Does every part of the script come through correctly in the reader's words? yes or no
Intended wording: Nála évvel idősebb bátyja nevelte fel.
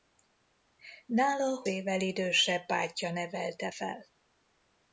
yes